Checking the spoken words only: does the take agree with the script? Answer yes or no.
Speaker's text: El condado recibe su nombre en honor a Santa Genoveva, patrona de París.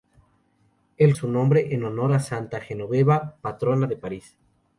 no